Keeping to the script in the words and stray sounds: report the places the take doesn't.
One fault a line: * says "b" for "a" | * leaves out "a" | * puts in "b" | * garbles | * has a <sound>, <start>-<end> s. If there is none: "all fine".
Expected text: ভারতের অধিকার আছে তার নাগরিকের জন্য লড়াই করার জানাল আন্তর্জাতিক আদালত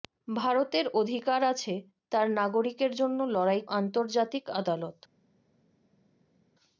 * leaves out "করার জানাল"